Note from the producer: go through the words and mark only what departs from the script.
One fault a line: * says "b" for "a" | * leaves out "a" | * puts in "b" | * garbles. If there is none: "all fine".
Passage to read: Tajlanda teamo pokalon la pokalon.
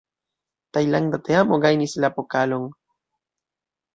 * says "gajnis" for "pokalon"